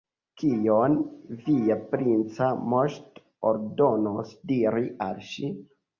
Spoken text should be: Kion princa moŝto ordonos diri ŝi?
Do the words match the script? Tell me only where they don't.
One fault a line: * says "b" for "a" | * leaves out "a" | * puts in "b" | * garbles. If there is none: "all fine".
* puts in "via"
* puts in "al"